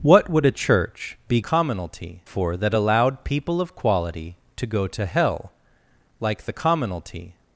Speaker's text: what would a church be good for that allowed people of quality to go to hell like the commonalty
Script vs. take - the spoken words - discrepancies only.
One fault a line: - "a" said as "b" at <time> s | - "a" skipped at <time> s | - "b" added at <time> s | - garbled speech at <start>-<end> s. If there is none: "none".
- "good" said as "commonalty" at 1.4 s